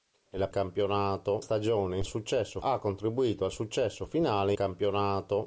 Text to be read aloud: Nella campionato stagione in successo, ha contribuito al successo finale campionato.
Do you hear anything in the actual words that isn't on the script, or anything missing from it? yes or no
no